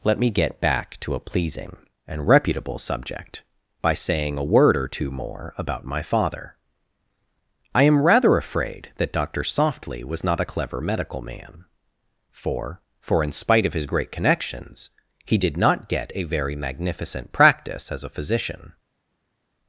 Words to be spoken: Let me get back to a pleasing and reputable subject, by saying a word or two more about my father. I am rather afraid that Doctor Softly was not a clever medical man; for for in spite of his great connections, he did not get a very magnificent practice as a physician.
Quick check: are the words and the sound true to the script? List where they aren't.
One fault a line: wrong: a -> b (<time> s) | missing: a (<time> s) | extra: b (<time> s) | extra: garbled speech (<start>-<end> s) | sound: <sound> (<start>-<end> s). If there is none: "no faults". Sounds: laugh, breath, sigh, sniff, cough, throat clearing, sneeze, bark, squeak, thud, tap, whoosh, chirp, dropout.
no faults